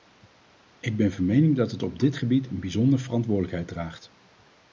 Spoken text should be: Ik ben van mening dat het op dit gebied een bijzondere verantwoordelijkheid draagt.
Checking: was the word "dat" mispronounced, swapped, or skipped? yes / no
no